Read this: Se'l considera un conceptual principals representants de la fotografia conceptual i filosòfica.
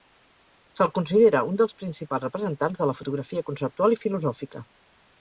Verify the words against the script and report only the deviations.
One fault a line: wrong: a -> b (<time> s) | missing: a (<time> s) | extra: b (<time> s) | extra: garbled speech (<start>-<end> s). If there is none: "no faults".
wrong: conceptual -> dels (1.6 s)